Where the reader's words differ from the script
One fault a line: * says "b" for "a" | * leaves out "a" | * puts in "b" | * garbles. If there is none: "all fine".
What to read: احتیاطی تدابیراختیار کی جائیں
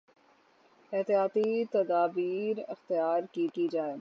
* puts in "کی"